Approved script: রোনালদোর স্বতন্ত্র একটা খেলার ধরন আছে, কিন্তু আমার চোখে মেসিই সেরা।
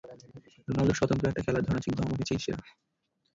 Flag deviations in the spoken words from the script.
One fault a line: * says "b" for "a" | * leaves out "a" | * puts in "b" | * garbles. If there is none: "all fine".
* leaves out "চোখে"